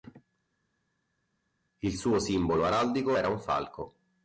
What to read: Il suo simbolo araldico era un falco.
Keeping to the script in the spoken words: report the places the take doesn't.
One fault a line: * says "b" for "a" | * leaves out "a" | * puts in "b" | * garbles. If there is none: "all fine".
all fine